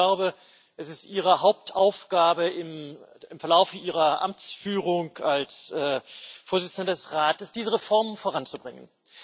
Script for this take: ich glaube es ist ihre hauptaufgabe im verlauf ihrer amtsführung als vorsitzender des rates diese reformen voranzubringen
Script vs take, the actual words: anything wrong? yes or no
no